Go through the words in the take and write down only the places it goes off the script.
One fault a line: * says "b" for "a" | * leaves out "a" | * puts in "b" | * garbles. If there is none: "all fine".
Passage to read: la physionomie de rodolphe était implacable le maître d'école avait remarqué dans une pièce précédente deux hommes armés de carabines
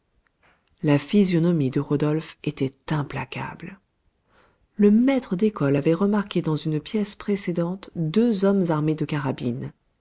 all fine